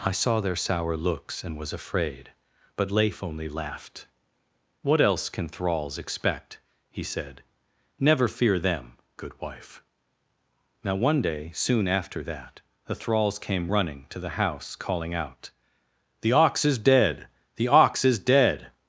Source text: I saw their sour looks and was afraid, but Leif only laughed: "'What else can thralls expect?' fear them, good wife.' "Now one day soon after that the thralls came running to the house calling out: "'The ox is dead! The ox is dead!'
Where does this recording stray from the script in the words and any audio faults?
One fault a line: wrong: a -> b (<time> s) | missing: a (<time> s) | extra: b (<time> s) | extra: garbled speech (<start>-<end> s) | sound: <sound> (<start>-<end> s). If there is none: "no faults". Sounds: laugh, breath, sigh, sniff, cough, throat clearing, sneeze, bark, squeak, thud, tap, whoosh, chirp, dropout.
extra: he said Never (6.9 s)